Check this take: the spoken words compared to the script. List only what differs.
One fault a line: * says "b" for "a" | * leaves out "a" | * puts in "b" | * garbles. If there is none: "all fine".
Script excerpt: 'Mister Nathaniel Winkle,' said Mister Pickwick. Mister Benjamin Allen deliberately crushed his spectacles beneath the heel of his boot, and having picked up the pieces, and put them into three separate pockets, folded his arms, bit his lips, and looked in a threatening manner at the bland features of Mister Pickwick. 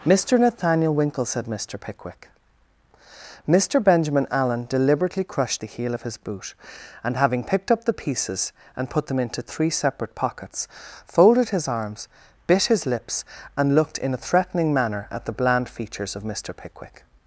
* leaves out "his spectacles beneath"